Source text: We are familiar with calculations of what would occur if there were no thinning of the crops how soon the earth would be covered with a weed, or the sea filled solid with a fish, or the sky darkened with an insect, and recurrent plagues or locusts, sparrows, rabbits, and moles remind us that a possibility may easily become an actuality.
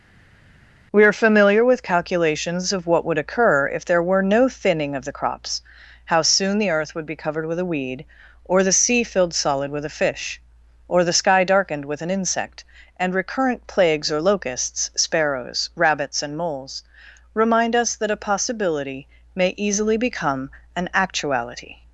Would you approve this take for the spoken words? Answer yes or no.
yes